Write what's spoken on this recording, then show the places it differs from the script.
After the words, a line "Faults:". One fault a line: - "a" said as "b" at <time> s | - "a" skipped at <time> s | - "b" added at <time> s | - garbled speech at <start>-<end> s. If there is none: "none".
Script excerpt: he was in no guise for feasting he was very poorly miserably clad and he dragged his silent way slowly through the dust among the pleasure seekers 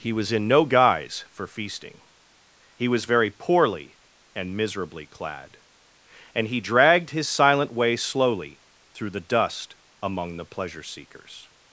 he was in no guise for feasting he was very poorly and miserably clad and he dragged his silent way slowly through the dust among the pleasure seekers
Faults:
- "and" added at 4.3 s